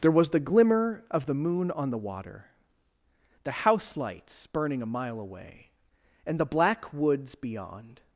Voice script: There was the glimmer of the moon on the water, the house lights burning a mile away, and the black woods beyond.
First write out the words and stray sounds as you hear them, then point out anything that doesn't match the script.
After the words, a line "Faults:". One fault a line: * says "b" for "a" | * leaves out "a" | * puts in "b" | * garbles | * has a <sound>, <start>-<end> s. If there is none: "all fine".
There was the glimmer of the moon on the water, the house lights burning a mile away, and the black woods beyond.
Faults:
all fine